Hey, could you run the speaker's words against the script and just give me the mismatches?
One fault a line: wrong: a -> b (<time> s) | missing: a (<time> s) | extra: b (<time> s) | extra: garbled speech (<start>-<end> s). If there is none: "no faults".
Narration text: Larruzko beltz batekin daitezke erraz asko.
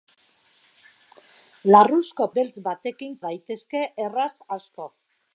no faults